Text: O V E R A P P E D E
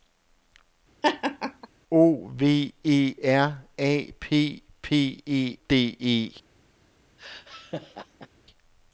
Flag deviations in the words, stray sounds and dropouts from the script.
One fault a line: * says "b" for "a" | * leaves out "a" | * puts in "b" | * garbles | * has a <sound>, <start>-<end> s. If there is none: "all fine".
* has a laugh, 1.0-1.7 s
* has a laugh, 7.2-8.3 s